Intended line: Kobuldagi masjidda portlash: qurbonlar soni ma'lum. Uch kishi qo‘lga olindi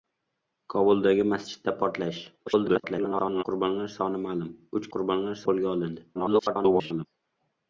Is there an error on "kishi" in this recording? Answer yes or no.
yes